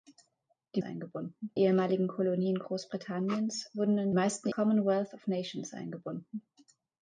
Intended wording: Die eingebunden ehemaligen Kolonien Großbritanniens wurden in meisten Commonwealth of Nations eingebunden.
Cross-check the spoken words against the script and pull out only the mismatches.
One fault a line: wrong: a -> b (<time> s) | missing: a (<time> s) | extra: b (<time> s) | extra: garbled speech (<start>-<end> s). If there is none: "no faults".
no faults